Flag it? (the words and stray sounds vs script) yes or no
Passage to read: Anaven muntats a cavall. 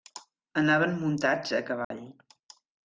yes